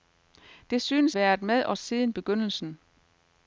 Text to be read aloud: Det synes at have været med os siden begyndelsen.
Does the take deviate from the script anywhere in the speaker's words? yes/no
yes